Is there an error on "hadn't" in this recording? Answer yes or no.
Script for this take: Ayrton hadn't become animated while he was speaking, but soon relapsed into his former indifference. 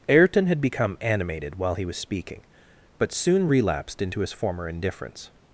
yes